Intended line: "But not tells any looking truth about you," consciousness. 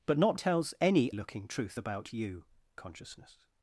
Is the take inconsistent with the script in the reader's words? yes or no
no